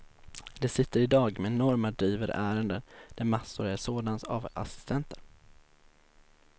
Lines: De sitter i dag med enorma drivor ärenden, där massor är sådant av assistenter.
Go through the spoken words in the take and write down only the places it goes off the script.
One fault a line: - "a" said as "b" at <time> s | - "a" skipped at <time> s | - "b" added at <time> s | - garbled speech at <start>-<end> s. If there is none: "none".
none